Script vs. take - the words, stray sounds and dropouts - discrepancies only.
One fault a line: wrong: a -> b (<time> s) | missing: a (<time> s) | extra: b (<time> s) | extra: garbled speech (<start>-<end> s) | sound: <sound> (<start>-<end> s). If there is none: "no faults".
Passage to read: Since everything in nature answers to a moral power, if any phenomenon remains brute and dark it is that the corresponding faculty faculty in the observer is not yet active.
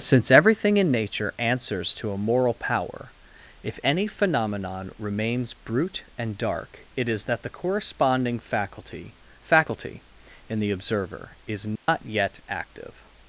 sound: dropout (11.8-11.9 s)